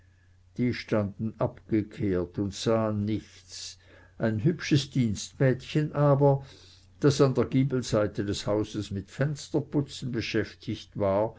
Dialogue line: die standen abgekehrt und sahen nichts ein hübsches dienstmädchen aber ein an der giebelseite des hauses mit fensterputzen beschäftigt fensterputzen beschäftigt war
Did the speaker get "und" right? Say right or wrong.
right